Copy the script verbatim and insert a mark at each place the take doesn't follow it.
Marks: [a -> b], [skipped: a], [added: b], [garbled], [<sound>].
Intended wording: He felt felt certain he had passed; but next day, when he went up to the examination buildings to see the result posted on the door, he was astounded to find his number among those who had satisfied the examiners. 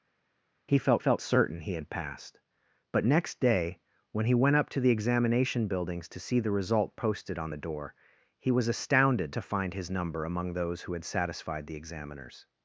He felt felt certain he had passed; but next day, when he went up to the examination buildings to see the result posted on the door, he was astounded to find his number among those who had satisfied the examiners.